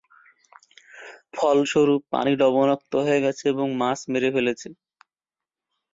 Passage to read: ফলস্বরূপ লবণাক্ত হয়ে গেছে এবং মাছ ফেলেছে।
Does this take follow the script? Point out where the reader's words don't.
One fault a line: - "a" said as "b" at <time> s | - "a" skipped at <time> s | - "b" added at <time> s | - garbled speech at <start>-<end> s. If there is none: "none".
- "পানি" added at 2.1 s
- "মেরে" added at 4.1 s